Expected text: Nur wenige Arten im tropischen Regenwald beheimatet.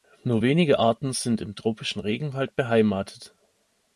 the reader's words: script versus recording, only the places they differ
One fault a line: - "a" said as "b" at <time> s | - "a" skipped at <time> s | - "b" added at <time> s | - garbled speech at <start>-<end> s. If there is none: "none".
- "sind" added at 1.1 s